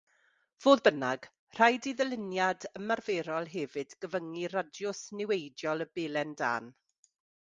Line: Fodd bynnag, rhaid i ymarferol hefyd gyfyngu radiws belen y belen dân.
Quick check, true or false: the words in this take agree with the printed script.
false